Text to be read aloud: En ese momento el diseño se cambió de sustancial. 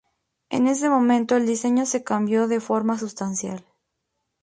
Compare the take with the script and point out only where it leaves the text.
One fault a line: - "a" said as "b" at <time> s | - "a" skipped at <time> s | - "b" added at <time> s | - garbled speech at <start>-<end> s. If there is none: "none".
- "forma" added at 2.6 s